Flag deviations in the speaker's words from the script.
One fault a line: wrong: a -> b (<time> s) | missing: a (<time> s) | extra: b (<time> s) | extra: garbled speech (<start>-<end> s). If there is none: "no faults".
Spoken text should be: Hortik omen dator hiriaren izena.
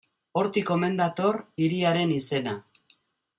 no faults